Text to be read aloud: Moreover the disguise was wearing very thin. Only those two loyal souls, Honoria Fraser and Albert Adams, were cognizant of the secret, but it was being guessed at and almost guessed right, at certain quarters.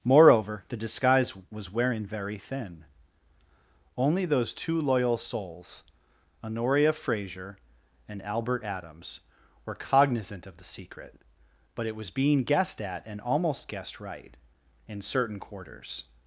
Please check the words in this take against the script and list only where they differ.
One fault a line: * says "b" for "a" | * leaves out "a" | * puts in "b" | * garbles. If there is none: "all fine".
* says "in" for "at"